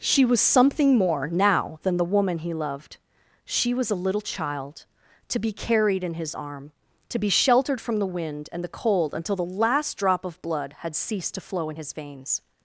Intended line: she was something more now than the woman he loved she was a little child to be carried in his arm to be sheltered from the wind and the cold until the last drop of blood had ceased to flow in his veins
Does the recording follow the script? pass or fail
pass